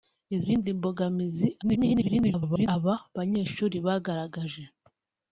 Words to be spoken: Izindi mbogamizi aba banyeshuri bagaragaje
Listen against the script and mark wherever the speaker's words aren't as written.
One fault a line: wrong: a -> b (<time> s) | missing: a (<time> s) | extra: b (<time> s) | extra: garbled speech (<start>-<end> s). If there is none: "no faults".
extra: garbled speech (1.6-2.7 s)